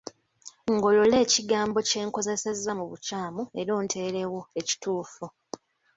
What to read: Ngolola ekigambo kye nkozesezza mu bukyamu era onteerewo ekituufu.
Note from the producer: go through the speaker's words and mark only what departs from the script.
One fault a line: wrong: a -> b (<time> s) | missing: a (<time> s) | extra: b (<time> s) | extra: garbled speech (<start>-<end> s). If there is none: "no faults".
no faults